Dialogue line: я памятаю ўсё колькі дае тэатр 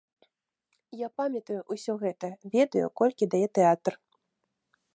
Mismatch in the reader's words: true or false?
true